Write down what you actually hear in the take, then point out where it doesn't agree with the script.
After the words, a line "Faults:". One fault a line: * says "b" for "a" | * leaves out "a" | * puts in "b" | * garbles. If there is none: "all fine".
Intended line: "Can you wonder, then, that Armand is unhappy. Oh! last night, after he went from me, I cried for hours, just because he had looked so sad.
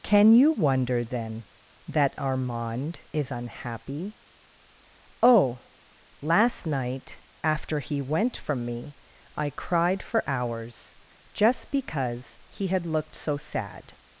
"Can you wonder, then, that Armand is unhappy. Oh! last night, after he went from me, I cried for hours, just because he had looked so sad.
Faults:
all fine